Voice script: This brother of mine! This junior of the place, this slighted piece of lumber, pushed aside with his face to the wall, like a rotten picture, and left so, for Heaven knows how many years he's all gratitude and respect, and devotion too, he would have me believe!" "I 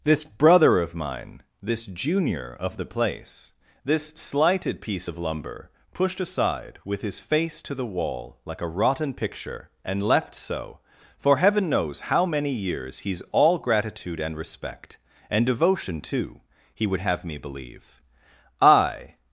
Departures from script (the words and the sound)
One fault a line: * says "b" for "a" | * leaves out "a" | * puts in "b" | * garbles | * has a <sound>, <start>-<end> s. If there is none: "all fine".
all fine